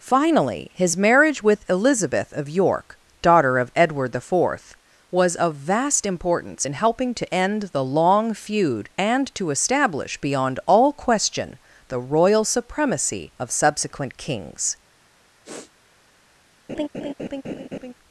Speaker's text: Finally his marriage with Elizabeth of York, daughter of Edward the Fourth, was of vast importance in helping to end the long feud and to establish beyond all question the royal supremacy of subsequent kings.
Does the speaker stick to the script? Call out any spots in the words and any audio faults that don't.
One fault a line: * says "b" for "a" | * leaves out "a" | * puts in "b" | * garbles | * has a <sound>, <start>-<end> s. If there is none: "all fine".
* has a sniff, 15.4-15.7 s
* has a laugh, 16.7-17.9 s